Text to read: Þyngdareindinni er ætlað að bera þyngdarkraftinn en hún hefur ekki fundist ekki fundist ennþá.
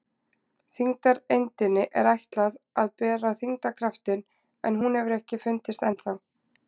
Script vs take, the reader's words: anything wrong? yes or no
yes